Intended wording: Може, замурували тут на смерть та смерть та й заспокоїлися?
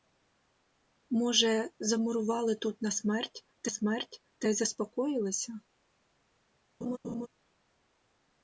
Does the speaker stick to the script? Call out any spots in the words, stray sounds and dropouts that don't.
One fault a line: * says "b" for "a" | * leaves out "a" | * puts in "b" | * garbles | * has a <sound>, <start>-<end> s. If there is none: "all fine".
* has a laugh, 6.8-7.3 s